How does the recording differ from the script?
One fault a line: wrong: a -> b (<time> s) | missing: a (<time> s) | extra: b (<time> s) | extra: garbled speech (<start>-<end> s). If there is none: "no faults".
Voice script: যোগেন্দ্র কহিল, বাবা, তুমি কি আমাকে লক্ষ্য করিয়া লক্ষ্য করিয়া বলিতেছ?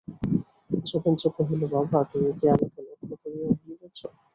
missing: লক্ষ্য করিয়া (3.5 s)